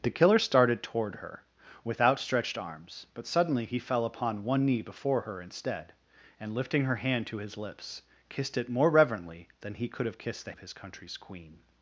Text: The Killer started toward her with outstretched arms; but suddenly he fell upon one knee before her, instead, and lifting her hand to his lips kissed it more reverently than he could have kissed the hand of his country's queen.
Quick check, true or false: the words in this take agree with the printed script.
false